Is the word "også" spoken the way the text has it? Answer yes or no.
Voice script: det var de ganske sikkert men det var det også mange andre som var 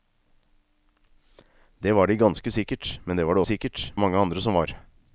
no